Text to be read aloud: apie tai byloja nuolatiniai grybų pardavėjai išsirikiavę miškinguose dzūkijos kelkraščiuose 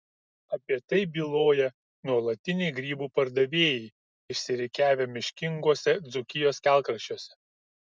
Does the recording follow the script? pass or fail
pass